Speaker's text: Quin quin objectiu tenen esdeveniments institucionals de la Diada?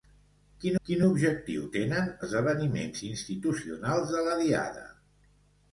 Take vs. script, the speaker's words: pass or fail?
pass